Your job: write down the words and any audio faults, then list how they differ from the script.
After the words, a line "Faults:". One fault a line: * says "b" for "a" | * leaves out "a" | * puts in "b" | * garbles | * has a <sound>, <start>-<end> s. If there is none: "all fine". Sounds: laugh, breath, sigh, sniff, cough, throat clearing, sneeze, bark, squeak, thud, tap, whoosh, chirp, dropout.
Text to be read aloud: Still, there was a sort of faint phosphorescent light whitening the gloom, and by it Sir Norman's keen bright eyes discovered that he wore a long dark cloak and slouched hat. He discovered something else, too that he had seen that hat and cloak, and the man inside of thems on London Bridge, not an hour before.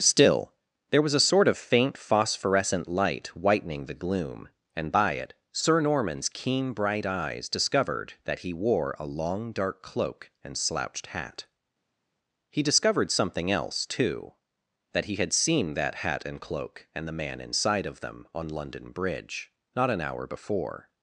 Still, there was a sort of faint phosphorescent light whitening the gloom, and by it Sir Norman's keen bright eyes discovered that he wore a long dark cloak and slouched hat. He discovered something else, too that he had seen that hat and cloak, and the man inside of them on London Bridge, not an hour before.
Faults:
* says "them" for "thems"